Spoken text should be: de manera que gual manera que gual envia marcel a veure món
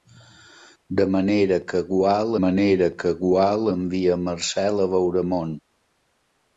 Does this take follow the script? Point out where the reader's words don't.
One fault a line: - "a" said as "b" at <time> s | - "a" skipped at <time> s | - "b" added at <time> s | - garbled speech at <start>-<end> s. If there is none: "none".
none